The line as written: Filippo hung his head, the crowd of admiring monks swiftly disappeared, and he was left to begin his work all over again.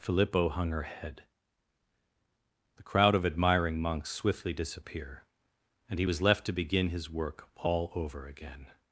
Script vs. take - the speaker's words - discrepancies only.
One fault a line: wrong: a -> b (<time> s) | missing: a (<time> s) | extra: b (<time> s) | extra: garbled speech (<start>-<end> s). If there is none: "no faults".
wrong: his -> her (0.7 s)
wrong: disappeared -> disappear (4.5 s)